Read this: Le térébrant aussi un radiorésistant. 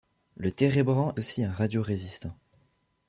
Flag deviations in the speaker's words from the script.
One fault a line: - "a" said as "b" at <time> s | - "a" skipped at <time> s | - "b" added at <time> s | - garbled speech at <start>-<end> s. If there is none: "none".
none